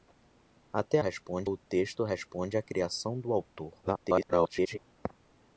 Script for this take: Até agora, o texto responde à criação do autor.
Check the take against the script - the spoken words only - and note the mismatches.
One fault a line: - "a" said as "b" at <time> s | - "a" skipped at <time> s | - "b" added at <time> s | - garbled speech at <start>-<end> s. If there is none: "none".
- "agora" said as "responde" at 1.0 s
- garbled speech at 3.8-4.8 s